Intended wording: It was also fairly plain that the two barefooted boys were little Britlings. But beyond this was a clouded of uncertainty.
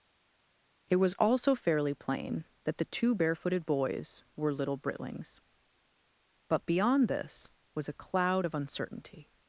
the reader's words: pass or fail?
fail